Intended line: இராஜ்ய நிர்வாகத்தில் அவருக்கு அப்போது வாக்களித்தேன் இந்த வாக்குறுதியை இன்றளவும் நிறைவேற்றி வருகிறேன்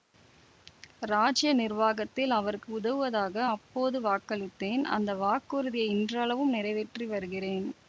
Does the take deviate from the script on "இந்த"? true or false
true